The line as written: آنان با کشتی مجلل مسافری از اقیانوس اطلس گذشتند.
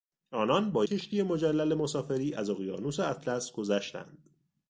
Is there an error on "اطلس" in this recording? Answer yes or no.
no